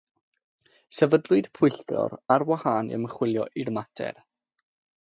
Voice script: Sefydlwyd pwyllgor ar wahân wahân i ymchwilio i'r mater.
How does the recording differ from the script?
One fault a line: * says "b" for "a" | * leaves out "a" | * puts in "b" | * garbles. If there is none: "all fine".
* leaves out "wahân"